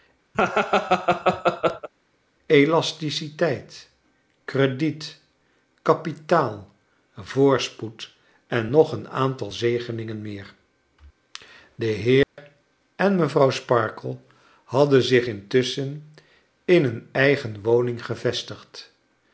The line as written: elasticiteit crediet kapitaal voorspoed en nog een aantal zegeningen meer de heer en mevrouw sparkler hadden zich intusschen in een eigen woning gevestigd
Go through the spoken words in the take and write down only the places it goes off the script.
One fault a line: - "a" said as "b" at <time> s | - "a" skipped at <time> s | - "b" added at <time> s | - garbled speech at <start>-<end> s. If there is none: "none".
none